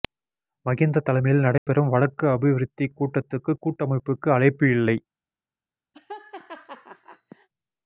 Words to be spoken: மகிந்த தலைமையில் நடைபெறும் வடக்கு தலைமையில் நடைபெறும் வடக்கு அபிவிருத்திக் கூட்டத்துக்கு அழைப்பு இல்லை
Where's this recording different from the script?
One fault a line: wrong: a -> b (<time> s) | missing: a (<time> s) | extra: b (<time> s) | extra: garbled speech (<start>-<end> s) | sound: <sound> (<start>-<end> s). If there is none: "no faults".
sound: dropout (1.6-1.7 s)
missing: தலைமையில் நடைபெறும் வடக்கு (2.2 s)
extra: கூட்டமைப்புக்கு (3.6 s)
sound: laugh (5.9-7.5 s)